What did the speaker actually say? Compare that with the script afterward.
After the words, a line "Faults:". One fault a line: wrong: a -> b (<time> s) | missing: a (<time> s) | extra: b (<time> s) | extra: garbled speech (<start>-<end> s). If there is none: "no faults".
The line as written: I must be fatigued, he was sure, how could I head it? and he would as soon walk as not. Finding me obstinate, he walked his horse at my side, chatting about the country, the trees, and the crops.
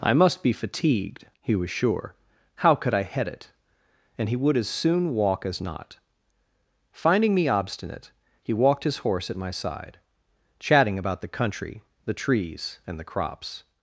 I must be fatigued, he was sure, how could I head it? and he would as soon walk as not. Finding me obstinate, he walked his horse at my side, chatting about the country, the trees, and the crops.
Faults:
no faults